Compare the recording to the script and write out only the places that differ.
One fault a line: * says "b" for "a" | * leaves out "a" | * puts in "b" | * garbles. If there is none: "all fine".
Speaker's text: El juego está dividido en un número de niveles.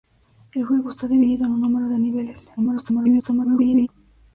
* garbles